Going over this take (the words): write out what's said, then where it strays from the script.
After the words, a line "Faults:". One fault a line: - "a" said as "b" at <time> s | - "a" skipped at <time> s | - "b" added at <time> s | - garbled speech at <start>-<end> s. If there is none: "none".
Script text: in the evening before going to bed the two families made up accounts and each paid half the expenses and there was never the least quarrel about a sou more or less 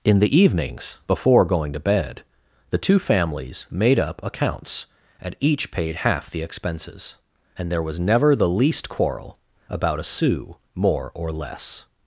in the evenings before going to bed the two families made up accounts and each paid half the expenses and there was never the least quarrel about a sou more or less
Faults:
- "evening" said as "evenings" at 0.3 s